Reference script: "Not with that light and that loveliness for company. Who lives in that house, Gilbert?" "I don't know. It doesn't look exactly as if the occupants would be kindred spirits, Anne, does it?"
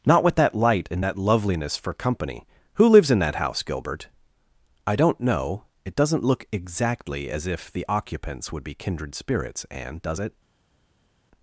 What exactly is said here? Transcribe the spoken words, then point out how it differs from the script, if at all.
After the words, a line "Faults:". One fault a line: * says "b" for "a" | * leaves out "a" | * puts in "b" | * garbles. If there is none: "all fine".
"Not with that light and that loveliness for company. Who lives in that house, Gilbert?" "I don't know. It doesn't look exactly as if the occupants would be kindred spirits, Anne, does it?"
Faults:
all fine